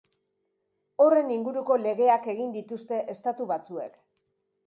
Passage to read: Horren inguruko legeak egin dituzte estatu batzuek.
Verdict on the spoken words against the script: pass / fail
pass